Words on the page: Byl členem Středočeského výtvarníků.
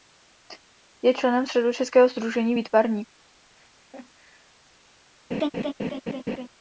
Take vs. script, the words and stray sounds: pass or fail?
fail